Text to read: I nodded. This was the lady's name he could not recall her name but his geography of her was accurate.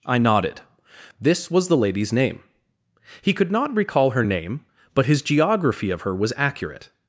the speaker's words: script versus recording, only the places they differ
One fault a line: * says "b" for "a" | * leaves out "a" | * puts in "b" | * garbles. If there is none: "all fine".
all fine